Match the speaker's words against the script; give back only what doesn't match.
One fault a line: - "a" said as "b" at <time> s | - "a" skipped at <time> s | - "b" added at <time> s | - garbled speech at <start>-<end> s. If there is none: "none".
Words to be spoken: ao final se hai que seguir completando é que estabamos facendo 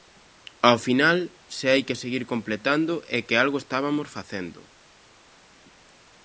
- "algo" added at 3.4 s